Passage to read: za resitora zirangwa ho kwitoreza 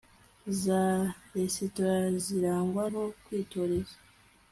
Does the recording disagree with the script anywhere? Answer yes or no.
no